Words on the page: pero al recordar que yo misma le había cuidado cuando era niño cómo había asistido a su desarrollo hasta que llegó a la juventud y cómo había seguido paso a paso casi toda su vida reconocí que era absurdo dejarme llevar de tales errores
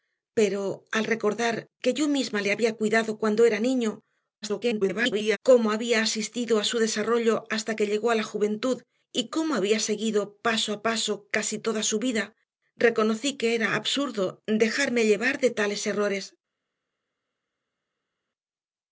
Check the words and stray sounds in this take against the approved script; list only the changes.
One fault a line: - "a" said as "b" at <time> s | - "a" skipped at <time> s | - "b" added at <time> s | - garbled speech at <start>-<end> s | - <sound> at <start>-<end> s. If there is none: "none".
- garbled speech at 4.4-5.4 s